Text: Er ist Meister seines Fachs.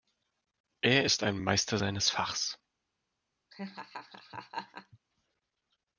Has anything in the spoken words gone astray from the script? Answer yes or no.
yes